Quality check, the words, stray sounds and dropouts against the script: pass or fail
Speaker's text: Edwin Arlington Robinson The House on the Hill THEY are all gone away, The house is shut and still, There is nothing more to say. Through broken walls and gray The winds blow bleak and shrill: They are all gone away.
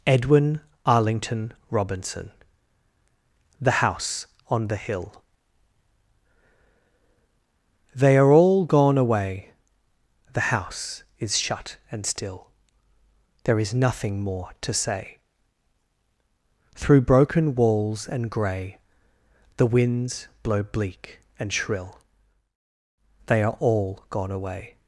pass